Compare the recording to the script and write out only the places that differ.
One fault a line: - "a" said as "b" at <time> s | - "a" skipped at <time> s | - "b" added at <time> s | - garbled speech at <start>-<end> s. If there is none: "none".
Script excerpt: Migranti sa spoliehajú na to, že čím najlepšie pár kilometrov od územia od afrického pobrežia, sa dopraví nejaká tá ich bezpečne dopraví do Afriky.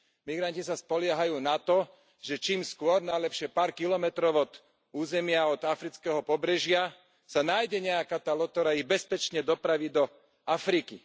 - "skôr" added at 2.6 s
- "dopraví" said as "nájde" at 7.4 s
- "loď ktorá" added at 8.3 s